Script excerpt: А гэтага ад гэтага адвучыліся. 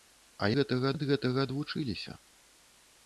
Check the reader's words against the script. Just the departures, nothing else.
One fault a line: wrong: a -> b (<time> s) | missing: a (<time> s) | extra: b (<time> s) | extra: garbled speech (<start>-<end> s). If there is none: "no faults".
no faults